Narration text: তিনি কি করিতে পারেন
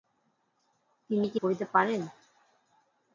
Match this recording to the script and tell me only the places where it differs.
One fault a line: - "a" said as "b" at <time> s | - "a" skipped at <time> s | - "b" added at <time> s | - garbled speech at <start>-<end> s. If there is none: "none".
none